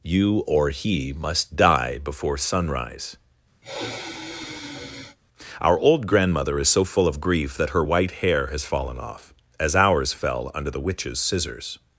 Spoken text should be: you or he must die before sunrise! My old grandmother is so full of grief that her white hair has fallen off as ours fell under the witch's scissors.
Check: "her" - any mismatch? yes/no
no